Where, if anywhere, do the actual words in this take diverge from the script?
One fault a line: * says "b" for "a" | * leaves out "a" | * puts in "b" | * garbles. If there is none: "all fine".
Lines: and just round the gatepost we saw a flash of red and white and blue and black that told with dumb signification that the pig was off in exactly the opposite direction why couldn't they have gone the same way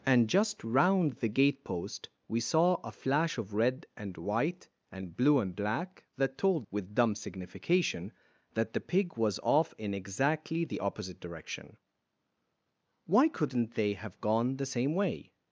all fine